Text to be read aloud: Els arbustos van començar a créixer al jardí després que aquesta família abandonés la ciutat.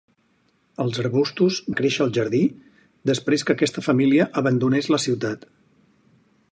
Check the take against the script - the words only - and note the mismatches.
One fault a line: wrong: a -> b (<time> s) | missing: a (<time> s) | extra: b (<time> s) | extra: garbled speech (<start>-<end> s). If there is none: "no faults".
missing: van començar (1.6 s)